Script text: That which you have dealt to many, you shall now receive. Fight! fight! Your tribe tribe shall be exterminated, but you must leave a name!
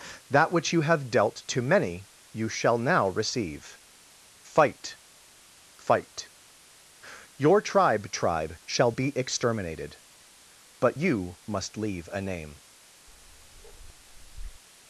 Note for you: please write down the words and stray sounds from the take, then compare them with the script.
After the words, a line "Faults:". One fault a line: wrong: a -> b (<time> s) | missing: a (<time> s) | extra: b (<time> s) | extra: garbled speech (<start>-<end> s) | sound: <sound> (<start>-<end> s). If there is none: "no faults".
That which you have dealt to many, you shall now receive. Fight! fight! Your tribe tribe shall be exterminated, but you must leave a name!
Faults:
sound: bark (13.1-14.6 s)